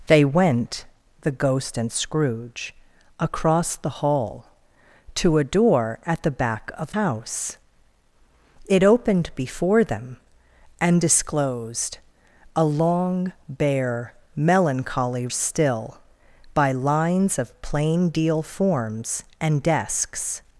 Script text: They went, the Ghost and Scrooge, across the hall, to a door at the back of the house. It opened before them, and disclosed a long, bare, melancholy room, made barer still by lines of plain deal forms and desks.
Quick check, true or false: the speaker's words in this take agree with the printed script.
false